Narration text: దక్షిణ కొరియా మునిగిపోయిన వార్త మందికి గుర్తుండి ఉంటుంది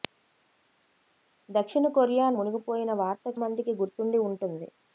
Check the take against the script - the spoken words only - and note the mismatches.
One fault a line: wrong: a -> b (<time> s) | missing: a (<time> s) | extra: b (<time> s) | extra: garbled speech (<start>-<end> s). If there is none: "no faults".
no faults